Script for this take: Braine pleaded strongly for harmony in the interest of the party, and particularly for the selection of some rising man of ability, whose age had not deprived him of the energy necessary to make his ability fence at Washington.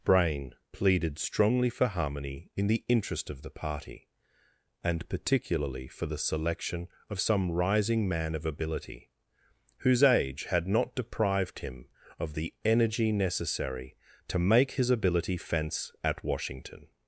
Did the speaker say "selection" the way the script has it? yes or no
yes